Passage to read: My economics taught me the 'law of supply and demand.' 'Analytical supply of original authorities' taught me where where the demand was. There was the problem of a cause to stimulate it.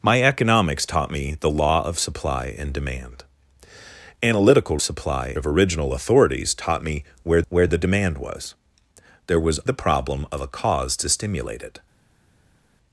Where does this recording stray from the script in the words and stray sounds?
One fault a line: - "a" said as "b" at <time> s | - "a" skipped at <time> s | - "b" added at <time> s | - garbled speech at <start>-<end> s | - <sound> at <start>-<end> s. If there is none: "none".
none